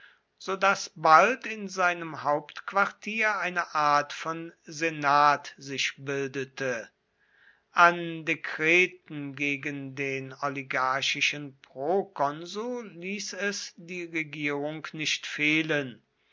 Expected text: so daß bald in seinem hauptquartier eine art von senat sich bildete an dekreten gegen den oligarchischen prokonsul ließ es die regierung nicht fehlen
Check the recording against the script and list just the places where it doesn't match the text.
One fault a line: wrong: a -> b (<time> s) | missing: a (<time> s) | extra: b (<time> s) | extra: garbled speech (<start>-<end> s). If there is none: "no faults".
no faults